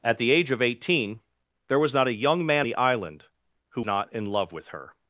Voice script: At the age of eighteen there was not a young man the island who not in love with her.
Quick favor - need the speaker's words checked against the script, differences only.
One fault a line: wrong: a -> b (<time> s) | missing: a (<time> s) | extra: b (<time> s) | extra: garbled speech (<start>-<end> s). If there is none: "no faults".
no faults